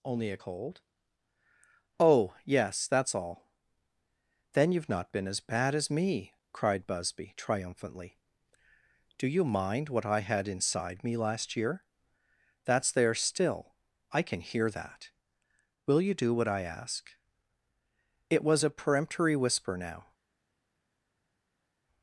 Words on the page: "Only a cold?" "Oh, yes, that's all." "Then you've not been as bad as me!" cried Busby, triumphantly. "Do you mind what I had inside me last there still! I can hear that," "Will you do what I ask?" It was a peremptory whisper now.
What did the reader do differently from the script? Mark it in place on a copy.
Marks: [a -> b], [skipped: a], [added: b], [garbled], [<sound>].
"Only a cold?" "Oh, yes, that's all." "Then you've not been as bad as me!" cried Busby, triumphantly. "Do you mind what I had inside me last [added: year That's] there still! I can hear that," "Will you do what I ask?" It was a peremptory whisper now.